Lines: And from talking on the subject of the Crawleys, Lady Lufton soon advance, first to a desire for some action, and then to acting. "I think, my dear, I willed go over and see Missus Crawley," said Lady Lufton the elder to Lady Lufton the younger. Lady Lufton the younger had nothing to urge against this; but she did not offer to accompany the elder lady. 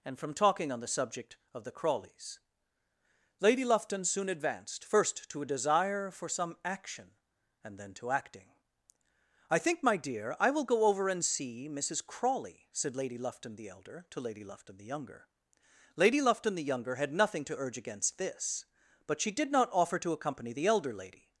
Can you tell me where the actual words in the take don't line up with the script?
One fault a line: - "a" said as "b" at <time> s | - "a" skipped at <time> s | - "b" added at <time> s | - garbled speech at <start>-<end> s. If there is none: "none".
- "advance" said as "advanced" at 4.3 s
- "willed" said as "will" at 10.5 s